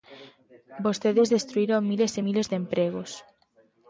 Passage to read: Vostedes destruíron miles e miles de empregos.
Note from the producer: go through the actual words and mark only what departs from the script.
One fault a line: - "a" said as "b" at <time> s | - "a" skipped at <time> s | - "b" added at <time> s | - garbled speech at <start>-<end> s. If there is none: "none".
none